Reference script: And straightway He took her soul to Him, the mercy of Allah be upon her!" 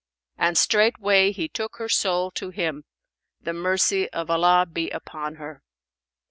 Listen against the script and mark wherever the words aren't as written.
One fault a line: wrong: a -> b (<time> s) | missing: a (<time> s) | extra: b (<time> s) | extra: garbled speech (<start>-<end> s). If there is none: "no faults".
no faults